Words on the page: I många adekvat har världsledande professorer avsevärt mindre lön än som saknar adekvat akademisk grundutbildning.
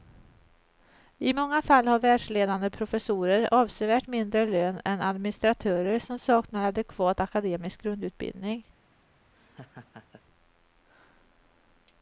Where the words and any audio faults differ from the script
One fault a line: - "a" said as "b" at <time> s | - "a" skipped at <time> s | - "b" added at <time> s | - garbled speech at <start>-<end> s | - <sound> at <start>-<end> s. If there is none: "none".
- "adekvat" said as "fall" at 1.6 s
- "administratörer" added at 5.0 s
- laugh at 9.3-10.2 s